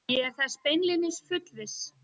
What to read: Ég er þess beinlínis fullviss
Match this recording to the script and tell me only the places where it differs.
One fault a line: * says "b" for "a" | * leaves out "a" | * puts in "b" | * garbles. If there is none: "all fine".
all fine